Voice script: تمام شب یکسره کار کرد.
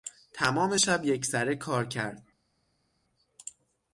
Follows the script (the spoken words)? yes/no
yes